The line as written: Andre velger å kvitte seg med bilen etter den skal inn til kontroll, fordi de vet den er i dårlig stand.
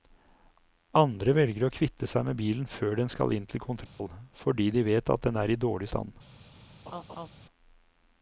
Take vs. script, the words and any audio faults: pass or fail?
fail